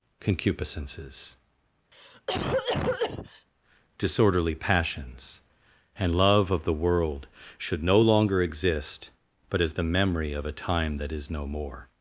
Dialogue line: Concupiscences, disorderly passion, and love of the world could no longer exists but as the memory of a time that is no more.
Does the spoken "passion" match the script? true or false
false